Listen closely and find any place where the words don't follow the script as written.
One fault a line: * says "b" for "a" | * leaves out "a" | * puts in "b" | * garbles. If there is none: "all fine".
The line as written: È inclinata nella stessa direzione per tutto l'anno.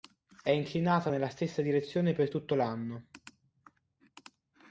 all fine